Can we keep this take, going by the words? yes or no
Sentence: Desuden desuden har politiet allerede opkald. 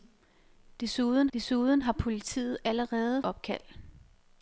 yes